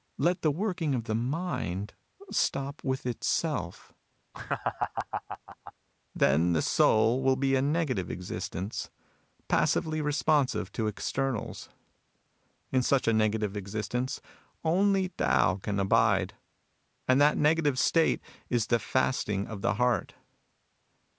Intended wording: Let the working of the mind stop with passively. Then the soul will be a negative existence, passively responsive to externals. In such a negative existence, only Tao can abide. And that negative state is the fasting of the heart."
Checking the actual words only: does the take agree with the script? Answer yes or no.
no